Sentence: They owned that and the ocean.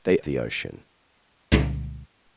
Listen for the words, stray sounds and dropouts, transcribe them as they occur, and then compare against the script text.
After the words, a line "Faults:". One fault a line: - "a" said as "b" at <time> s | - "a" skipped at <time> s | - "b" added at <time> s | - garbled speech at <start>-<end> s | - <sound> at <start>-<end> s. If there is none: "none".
They the ocean.
Faults:
- "owned that and" skipped at 0.2 s
- thud at 1.5-2.1 s